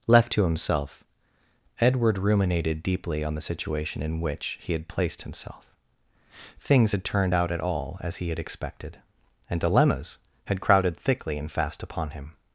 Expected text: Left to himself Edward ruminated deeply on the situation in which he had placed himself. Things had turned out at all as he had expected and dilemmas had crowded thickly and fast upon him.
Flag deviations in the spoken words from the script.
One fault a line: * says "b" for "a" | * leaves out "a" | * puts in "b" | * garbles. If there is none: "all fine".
all fine